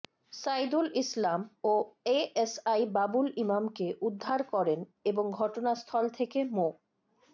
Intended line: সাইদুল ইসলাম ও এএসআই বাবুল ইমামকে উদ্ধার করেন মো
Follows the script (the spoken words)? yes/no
no